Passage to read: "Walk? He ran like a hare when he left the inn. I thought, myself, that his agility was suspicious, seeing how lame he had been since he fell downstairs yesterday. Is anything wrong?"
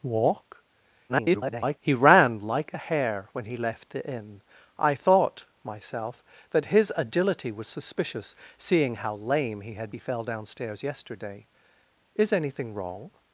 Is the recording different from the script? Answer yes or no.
yes